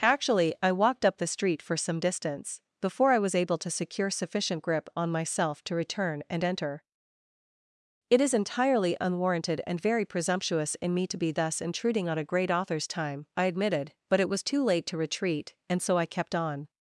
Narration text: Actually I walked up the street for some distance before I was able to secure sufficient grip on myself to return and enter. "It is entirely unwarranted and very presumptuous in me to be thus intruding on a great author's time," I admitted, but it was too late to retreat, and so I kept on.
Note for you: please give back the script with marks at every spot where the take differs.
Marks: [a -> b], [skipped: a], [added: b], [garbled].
Actually I walked up the street for some distance before I was able to secure sufficient grip on myself to return and enter. "It is entirely unwarranted and very presumptuous in me to be thus intruding on a great author's time," I admitted, but it was too late to retreat, and so I kept on.